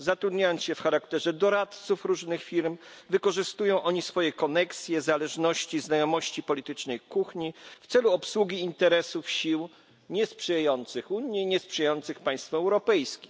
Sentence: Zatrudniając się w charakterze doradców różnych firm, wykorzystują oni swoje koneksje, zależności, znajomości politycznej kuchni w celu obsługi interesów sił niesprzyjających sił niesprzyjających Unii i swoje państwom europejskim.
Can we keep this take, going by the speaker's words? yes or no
no